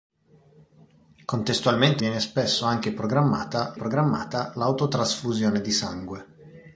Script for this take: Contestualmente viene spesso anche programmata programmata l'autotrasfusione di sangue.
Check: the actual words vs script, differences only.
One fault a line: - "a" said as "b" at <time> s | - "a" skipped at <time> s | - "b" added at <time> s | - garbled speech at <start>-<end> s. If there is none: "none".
none